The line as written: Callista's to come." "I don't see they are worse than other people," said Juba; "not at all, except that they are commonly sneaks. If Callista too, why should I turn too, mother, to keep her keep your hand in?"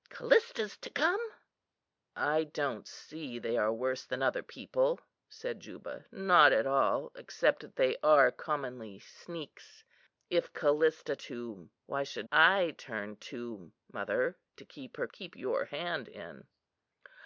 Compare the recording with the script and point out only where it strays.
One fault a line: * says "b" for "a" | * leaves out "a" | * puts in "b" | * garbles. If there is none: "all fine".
all fine